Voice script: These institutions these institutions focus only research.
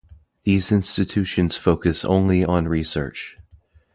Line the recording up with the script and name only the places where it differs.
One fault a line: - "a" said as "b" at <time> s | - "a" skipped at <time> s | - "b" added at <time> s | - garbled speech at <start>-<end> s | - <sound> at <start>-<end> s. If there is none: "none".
- "these institutions" skipped at 1.6 s
- "on" added at 2.4 s